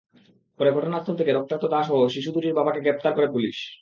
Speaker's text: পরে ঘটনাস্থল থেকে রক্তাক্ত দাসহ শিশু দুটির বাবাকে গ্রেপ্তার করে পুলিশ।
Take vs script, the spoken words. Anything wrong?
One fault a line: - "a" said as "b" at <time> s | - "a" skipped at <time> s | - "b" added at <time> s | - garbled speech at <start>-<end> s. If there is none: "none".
none